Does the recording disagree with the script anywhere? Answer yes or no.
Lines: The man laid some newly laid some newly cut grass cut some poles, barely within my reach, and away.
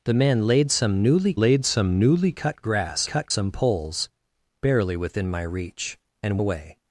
no